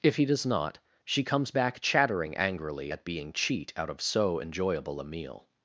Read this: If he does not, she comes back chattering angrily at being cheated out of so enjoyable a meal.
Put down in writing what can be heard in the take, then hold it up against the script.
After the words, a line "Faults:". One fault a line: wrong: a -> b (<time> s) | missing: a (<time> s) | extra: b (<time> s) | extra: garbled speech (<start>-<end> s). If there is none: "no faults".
If he does not, she comes back chattering angrily at being cheat out of so enjoyable a meal.
Faults:
wrong: cheated -> cheat (3.3 s)